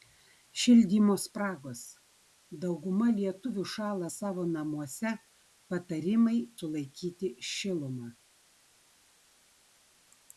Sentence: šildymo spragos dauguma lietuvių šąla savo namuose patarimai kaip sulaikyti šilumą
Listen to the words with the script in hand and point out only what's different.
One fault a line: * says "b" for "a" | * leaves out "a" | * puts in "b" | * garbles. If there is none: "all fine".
* leaves out "kaip"